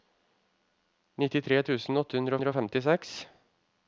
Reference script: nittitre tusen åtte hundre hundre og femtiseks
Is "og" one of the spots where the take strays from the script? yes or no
no